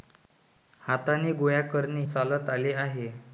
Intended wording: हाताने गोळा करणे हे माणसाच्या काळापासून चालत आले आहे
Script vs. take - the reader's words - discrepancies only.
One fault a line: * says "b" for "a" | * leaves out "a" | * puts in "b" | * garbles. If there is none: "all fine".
* leaves out "हे माणसाच्या काळापासून"